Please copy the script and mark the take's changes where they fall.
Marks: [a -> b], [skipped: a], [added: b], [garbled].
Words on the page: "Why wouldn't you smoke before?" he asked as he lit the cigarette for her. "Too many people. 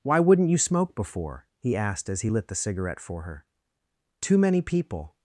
"Why wouldn't you smoke before?" he asked as he lit the cigarette for her. "Too many people.